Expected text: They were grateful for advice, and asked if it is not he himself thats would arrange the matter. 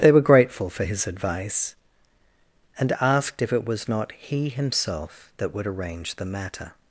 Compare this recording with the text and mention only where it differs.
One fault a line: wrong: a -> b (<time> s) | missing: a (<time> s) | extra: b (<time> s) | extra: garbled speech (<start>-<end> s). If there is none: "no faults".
extra: his (0.8 s)
wrong: is -> was (3.7 s)
wrong: thats -> that (5.4 s)